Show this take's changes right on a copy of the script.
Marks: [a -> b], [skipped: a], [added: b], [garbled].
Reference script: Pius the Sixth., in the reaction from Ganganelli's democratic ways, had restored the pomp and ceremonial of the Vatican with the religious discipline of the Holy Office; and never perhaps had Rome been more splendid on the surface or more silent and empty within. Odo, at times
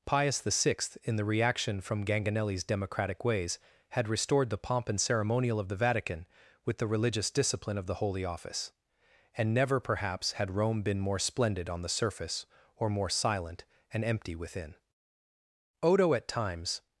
Pius the Sixth., in the reaction from Ganganelli's democratic ways, had restored the pomp and ceremonial of the Vatican with the religious discipline of the Holy Office; and never perhaps had Rome been more splendid on the surface or more silent and empty within. Odo, at times